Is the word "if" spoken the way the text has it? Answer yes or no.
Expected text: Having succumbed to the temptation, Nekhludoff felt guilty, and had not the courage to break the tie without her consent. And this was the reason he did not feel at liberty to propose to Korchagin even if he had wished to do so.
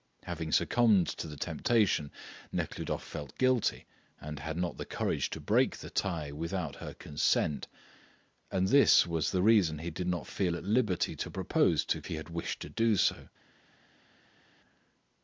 no